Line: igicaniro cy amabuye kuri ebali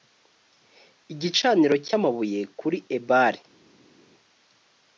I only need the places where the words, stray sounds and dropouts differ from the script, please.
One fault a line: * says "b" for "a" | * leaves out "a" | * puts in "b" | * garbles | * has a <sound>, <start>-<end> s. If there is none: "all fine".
all fine